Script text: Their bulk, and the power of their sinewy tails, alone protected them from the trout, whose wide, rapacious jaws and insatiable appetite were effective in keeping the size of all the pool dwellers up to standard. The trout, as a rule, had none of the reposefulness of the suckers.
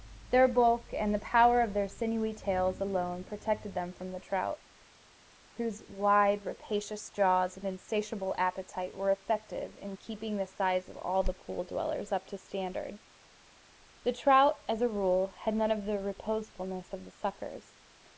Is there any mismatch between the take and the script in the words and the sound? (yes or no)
no